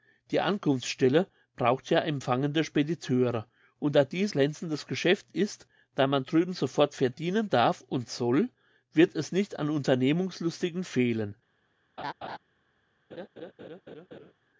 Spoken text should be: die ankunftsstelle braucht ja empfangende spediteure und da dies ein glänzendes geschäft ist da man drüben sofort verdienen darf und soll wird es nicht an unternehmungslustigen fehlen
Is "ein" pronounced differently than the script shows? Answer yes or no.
yes